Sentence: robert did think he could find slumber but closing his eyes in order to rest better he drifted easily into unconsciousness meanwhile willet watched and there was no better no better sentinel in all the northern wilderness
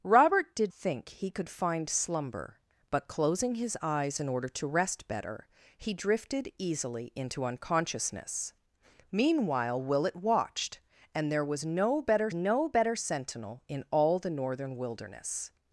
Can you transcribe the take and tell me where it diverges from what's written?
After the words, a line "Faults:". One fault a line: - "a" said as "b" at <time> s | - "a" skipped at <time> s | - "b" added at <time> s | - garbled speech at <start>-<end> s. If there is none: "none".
robert did think he could find slumber but closing his eyes in order to rest better he drifted easily into unconsciousness meanwhile willet watched and there was no better no better sentinel in all the northern wilderness
Faults:
none